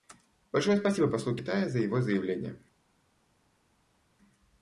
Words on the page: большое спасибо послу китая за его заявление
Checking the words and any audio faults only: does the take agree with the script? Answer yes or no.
yes